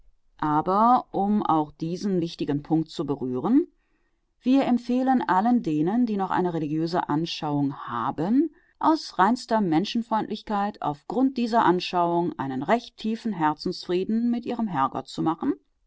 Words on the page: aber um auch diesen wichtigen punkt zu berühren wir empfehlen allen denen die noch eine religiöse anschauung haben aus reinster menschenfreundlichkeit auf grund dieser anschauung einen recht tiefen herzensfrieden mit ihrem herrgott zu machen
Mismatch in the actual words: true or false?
false